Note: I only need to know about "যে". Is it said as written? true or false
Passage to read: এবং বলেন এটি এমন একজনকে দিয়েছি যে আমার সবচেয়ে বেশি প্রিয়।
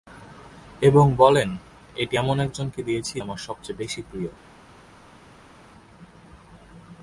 false